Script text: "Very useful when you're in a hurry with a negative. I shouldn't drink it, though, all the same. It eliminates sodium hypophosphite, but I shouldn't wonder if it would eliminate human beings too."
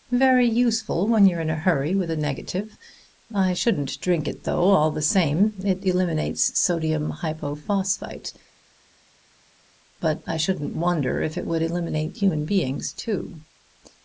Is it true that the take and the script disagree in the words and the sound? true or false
false